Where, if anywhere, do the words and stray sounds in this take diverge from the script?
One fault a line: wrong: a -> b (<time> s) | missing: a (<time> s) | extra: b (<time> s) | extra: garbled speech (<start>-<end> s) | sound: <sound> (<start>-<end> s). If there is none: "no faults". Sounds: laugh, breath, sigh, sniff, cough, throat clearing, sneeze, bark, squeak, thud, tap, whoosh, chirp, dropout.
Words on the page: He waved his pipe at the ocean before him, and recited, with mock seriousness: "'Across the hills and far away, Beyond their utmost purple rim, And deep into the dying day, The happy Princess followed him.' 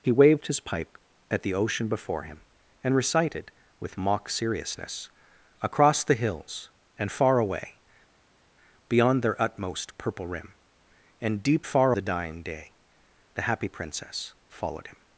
wrong: into -> far (11.7 s)